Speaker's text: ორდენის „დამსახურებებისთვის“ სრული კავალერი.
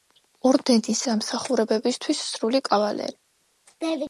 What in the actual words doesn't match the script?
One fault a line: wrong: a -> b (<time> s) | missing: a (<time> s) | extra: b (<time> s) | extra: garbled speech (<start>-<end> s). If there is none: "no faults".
no faults